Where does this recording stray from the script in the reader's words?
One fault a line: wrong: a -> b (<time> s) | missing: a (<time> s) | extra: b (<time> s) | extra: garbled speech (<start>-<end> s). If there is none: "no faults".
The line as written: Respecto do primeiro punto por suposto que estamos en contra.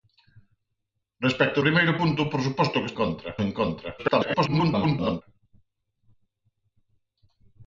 missing: do (1.6 s)
wrong: estamos -> contra (3.0 s)
extra: garbled speech (4.0-5.2 s)